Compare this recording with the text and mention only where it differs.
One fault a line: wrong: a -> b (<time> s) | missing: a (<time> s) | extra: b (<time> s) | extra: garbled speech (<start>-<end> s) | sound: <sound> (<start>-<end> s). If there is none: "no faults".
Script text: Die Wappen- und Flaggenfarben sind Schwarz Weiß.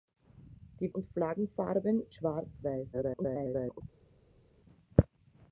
missing: Wappen (0.9 s)
missing: sind (2.0 s)
extra: garbled speech (2.9-3.8 s)